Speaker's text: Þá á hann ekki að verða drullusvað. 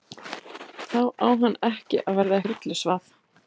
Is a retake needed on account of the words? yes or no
no